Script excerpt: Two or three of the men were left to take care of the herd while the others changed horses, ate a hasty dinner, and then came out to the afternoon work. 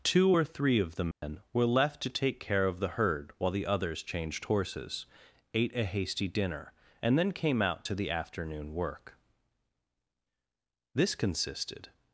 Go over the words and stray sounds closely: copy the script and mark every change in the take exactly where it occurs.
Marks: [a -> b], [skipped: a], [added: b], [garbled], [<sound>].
Two or three of the men [dropout] were left to take care of the herd while the others changed horses, ate a hasty dinner, and then came out to the afternoon work. [added: This consisted]